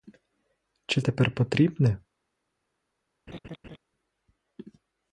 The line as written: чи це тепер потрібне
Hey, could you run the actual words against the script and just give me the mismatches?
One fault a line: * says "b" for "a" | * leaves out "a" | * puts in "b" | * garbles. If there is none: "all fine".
* leaves out "це"